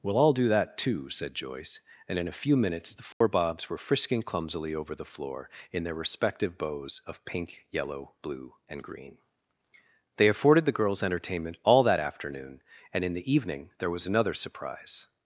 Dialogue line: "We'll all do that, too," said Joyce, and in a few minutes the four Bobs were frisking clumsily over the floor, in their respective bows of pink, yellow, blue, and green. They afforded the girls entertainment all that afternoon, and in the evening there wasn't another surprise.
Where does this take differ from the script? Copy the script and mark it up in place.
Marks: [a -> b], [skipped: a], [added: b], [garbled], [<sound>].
"We'll all do that, too," said Joyce, and in a few minutes the four [dropout] Bobs were frisking clumsily over the floor, in their respective bows of pink, yellow, blue, and green. They afforded the girls entertainment all that afternoon, and in the evening there [wasn't -> was] another surprise.